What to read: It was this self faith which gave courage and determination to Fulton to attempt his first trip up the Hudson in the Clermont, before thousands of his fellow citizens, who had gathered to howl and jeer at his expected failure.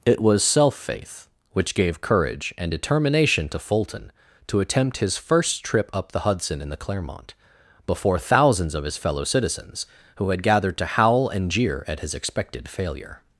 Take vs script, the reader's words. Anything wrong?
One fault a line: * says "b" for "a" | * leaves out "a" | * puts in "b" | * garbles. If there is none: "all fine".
* leaves out "this"